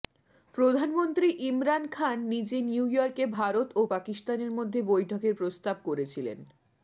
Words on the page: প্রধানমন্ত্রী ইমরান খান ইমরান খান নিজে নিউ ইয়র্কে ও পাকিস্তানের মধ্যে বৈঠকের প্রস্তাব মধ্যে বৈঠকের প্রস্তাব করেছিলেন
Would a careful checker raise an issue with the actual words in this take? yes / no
yes